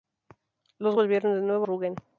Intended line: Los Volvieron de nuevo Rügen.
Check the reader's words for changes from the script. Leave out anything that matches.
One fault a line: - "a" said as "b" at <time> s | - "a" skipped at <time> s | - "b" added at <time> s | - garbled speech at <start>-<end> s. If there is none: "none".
none